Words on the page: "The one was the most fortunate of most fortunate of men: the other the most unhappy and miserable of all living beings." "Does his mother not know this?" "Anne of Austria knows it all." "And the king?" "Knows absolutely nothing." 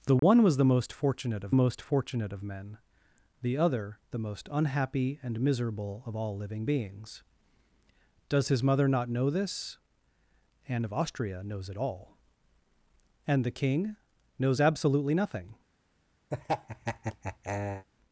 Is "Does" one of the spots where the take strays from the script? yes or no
no